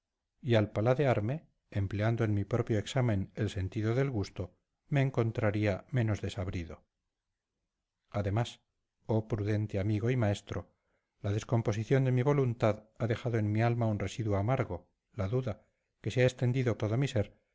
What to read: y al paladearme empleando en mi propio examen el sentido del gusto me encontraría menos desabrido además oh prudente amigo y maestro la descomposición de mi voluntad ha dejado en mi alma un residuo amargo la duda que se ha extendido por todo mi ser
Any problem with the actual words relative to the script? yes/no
yes